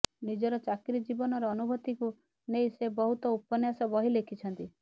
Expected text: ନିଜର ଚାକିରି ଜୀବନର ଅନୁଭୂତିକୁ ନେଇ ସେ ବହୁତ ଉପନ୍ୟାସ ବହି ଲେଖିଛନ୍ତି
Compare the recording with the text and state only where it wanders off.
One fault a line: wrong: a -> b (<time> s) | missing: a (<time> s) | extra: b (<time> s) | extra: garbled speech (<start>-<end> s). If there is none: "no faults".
no faults